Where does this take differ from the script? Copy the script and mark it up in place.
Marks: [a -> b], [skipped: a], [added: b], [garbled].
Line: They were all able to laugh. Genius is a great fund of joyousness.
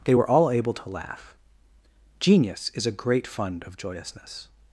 They were all able to laugh. Genius is a great fund of joyousness.